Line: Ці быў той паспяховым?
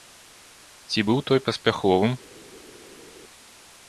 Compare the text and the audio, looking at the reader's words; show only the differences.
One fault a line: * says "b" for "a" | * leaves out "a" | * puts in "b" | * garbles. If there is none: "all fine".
all fine